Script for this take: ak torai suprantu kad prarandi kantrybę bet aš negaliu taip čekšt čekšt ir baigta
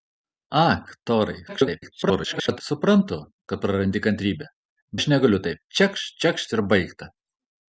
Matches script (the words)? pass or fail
fail